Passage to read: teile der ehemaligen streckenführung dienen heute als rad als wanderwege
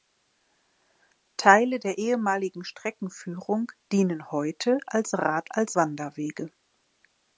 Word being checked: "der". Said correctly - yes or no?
yes